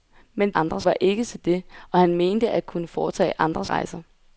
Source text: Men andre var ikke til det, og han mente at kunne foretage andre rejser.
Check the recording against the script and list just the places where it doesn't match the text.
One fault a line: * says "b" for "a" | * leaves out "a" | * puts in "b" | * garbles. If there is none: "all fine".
all fine